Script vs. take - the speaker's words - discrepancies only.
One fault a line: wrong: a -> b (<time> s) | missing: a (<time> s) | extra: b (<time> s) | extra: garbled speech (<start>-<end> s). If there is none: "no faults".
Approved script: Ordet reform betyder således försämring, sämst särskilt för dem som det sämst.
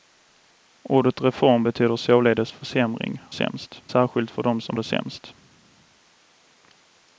no faults